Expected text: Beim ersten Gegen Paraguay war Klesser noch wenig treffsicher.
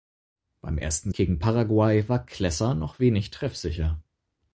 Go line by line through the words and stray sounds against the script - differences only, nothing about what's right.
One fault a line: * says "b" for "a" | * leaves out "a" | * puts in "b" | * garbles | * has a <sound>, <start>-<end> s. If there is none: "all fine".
all fine